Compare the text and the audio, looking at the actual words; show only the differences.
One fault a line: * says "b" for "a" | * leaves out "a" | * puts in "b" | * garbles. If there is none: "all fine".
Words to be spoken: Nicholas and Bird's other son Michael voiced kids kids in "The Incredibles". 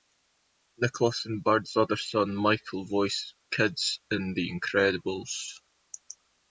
* leaves out "kids"